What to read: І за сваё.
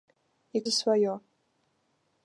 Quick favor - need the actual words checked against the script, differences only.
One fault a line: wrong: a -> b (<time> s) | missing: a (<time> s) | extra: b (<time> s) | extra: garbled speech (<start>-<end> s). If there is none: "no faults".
no faults